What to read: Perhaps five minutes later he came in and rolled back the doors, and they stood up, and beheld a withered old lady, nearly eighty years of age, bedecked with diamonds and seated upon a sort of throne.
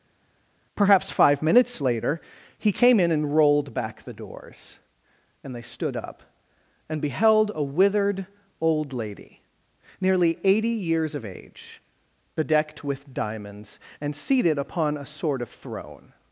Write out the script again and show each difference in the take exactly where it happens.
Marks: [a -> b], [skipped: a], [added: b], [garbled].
Perhaps five minutes later he came in and rolled back the doors, and they stood up, and beheld a withered old lady, nearly eighty years of age, bedecked with diamonds and seated upon a sort of throne.